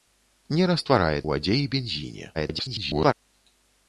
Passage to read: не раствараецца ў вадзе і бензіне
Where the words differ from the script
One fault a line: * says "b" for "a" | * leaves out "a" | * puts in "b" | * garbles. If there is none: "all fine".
* leaves out "ў"
* garbles